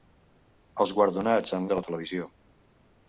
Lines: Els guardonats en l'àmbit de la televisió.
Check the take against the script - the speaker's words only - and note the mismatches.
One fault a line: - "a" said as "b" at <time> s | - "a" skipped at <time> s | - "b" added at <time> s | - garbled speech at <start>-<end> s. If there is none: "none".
- "l'àmbit" skipped at 1.7 s